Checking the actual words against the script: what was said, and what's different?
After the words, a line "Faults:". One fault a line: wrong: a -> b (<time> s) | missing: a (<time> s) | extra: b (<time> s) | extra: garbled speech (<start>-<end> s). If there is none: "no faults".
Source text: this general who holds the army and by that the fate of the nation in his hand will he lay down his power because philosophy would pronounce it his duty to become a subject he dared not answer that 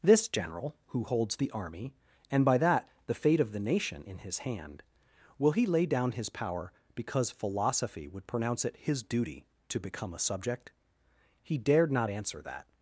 this general who holds the army and by that the fate of the nation in his hand will he lay down his power because philosophy would pronounce it his duty to become a subject he dared not answer that
Faults:
no faults